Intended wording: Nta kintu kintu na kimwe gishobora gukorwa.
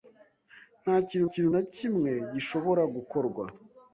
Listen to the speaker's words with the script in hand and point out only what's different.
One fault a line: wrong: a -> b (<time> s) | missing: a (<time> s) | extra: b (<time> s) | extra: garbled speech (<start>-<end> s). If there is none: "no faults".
no faults